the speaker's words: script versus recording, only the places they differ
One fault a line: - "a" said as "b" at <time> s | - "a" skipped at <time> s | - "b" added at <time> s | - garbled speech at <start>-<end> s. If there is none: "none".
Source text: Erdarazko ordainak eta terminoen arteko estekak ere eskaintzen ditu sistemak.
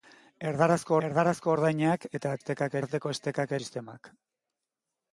- "erdarazko" added at 1.1 s
- "terminoen" said as "estekak" at 2.4 s
- "ere eskaintzen ditu" skipped at 3.6 s